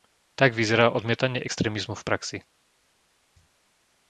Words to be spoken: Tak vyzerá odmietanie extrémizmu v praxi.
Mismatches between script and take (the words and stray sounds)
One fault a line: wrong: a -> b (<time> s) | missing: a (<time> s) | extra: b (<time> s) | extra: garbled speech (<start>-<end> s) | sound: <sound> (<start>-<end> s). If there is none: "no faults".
no faults